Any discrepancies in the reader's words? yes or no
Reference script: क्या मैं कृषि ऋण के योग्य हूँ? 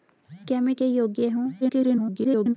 yes